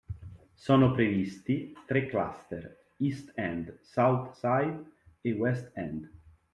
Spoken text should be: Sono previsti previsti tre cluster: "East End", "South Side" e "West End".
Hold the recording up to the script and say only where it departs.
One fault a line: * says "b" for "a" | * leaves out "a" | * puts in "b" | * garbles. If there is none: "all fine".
* leaves out "previsti"